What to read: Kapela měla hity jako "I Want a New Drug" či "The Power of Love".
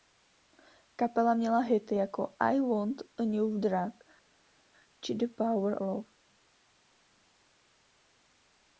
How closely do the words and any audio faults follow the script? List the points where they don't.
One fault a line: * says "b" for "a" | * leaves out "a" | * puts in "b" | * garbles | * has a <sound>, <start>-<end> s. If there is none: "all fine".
* leaves out "of"